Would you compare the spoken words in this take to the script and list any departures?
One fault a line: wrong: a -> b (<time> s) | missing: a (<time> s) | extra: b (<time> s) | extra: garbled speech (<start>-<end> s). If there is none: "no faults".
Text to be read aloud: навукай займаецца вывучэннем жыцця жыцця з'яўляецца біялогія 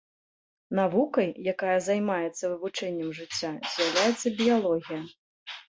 extra: якая (1.5 s)
missing: жыцця (3.5 s)